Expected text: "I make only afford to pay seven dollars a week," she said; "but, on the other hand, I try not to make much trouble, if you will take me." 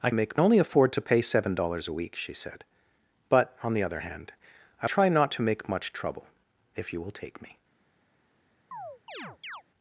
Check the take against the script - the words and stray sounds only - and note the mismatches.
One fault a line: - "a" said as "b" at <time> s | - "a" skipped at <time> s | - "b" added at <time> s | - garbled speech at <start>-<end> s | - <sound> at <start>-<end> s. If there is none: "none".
- chirp at 8.7-9.6 s